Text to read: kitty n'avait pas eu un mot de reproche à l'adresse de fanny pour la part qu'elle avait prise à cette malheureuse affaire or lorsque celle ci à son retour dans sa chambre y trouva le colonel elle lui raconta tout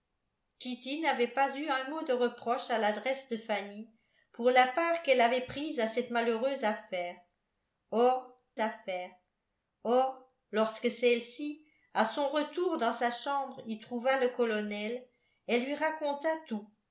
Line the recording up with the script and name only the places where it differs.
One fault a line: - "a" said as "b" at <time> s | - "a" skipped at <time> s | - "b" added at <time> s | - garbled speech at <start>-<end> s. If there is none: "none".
- "affaire or" added at 8.6 s